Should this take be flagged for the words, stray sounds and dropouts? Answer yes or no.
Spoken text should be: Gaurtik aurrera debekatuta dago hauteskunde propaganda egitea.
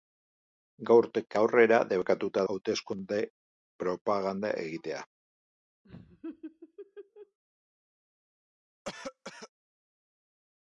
yes